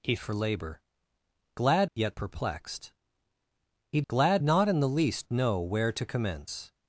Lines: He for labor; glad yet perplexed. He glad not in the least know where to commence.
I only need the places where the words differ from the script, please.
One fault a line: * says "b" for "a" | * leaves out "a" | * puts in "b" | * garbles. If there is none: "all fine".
all fine